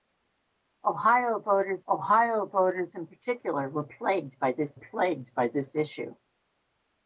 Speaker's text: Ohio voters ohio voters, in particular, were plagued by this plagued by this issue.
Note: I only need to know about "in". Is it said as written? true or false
true